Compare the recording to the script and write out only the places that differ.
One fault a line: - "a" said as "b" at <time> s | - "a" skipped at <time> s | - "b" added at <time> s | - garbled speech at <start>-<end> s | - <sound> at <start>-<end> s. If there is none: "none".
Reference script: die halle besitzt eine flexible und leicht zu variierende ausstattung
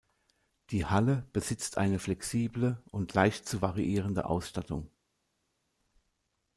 none